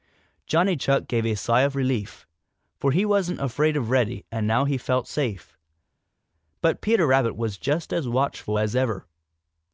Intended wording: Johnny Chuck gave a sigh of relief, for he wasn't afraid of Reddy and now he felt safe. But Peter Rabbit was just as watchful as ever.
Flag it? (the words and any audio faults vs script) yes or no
no